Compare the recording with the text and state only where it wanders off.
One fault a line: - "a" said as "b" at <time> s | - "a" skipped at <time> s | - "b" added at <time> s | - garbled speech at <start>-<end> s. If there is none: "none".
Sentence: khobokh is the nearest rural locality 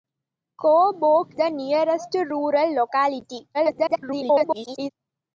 - "is" skipped at 1.4 s
- garbled speech at 3.5-4.9 s